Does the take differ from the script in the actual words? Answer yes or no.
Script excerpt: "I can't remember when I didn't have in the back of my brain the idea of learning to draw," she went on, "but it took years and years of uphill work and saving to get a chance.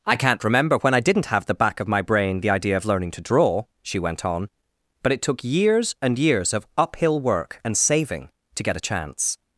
yes